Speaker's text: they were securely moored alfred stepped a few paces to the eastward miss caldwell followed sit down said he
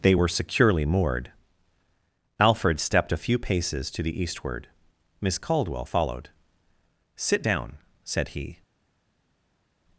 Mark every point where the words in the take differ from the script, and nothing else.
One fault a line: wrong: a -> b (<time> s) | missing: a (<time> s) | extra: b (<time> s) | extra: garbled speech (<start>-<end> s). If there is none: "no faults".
no faults